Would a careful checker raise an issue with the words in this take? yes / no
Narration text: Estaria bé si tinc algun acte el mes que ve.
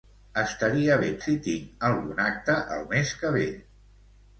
no